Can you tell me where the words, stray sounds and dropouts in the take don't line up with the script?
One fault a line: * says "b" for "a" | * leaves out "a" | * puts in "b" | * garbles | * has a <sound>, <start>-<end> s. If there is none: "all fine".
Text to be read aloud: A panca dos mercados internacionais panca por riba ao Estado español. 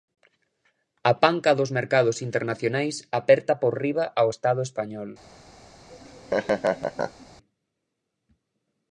* says "aperta" for "panca"
* has a laugh, 5.9-7.3 s